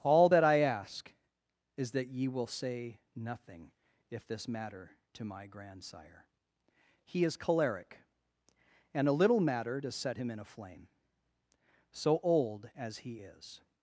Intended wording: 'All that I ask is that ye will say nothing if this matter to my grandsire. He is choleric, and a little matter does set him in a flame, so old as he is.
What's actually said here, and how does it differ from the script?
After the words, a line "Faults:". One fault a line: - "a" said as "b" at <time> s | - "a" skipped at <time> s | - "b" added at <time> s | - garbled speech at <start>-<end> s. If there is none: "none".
'All that I ask is that ye will say nothing if this matter to my grandsire. He is choleric, and a little matter does set him in a flame, so old as he is.
Faults:
none